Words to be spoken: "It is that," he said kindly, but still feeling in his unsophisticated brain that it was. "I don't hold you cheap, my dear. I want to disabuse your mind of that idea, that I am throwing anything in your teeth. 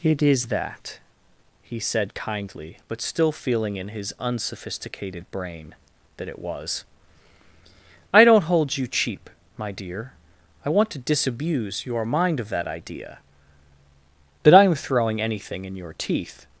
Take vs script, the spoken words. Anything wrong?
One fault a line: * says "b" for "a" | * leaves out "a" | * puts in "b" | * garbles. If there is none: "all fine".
all fine